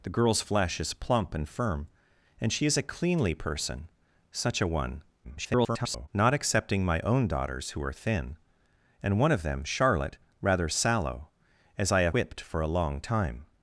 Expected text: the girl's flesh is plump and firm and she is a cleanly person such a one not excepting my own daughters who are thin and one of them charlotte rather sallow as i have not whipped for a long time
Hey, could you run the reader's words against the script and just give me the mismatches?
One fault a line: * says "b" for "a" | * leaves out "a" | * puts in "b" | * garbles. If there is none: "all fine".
* garbles
* leaves out "not"